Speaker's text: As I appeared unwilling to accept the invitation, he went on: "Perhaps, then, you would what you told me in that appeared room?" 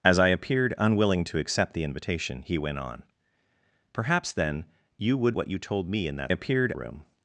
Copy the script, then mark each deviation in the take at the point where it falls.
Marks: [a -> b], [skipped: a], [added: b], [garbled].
As I appeared unwilling to accept the invitation, he went on: "Perhaps, then, you would what you told me in that appeared room?"